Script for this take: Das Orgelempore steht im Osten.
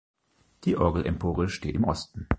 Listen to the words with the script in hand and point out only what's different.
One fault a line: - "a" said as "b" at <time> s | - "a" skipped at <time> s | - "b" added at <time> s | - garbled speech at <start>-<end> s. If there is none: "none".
- "Das" said as "Die" at 0.6 s